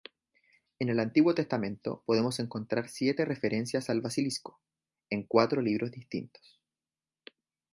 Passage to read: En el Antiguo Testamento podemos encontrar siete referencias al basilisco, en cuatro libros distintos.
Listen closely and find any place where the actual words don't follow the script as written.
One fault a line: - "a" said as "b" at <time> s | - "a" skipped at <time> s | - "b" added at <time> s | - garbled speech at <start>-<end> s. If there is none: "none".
none